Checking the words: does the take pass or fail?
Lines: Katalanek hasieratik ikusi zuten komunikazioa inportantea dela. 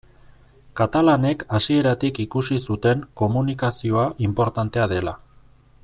pass